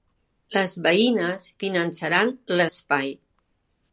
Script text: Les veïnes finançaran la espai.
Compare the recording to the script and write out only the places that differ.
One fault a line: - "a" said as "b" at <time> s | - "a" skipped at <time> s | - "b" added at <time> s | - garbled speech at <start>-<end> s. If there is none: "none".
none